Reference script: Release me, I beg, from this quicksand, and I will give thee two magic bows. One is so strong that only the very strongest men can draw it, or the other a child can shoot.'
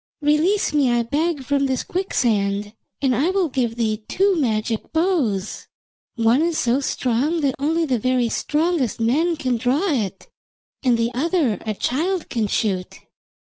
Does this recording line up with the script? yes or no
no